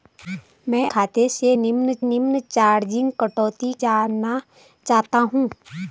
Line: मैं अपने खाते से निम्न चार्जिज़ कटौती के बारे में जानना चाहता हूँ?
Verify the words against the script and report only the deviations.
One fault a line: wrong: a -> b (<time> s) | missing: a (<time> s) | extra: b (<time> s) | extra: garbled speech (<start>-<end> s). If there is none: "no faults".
missing: अपने (0.9 s)
extra: निम्न (2.0 s)
missing: के बारे में (3.7 s)